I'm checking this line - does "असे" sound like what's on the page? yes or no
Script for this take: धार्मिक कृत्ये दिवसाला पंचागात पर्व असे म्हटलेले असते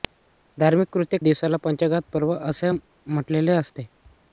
yes